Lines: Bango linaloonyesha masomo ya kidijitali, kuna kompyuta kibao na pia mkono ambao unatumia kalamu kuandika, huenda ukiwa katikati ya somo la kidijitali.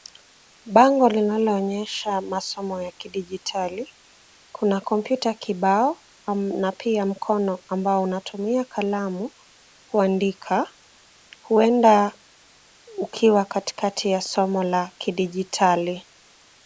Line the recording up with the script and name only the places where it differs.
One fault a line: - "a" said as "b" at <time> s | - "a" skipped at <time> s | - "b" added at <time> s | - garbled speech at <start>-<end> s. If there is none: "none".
none